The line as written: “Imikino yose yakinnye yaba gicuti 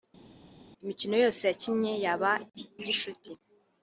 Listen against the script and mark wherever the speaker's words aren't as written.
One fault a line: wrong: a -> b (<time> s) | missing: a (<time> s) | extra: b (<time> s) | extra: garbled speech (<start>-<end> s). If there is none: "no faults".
no faults